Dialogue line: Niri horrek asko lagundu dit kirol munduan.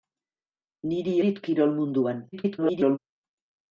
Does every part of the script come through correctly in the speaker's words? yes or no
no